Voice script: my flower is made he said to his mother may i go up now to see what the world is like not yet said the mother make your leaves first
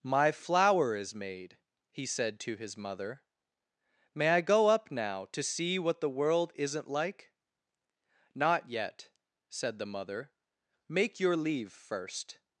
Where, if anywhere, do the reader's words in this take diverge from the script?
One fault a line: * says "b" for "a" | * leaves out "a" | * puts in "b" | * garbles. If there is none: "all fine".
* says "isn't" for "is"
* says "leave" for "leaves"